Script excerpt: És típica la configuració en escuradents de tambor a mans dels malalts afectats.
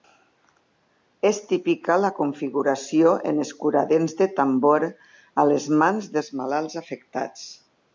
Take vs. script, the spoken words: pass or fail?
fail